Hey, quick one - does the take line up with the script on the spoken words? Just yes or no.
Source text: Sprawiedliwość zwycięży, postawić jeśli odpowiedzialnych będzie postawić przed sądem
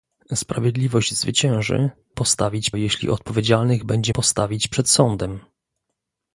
yes